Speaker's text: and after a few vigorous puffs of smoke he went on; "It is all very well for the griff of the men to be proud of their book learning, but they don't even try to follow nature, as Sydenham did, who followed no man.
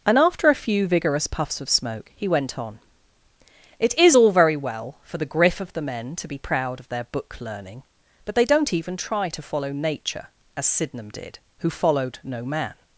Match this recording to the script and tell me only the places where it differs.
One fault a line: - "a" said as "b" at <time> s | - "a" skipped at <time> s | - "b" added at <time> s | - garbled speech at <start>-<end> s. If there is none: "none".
none